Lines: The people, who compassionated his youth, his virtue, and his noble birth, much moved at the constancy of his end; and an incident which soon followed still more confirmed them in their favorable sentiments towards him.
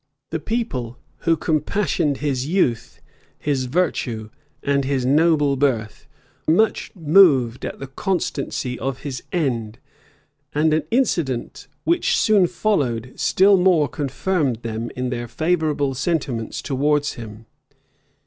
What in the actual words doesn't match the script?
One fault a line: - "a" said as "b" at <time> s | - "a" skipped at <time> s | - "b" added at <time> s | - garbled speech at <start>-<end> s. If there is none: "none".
none